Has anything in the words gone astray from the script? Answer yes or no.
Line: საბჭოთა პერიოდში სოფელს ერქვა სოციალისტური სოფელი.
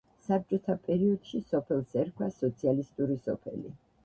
no